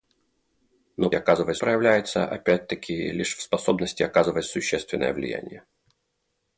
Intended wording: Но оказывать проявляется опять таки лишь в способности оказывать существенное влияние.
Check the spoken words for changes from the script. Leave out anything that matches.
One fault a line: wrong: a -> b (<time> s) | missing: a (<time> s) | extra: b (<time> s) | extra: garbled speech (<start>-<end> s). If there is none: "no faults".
no faults